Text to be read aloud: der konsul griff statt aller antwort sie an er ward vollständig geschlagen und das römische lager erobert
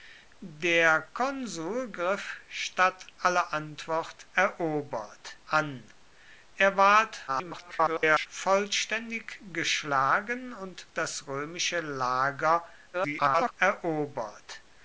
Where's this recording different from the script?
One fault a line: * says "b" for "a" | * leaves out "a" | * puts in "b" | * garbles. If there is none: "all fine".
* says "erobert" for "sie"
* garbles
* garbles